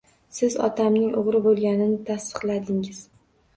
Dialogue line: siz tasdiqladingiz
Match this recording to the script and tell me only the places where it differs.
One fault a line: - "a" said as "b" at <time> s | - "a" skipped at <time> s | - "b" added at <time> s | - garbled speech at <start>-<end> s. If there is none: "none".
- "otamning o`g`ri bo`lganini" added at 0.7 s